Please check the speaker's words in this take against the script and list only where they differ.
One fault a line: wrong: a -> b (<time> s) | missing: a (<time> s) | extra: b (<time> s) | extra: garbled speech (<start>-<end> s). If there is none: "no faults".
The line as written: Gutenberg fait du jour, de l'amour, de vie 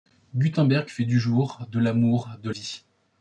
no faults